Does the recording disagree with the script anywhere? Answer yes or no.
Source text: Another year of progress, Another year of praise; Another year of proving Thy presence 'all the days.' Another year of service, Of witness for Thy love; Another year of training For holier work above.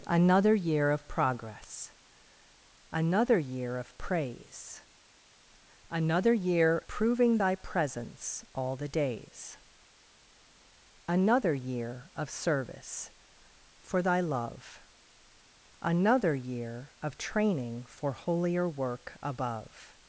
yes